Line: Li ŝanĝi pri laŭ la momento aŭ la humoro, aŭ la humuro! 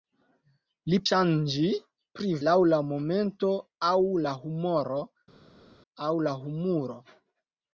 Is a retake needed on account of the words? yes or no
no